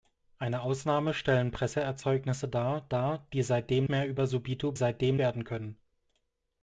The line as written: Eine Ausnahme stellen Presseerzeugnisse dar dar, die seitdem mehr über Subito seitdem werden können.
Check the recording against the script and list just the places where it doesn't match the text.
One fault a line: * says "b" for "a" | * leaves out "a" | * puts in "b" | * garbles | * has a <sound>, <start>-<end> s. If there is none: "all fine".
all fine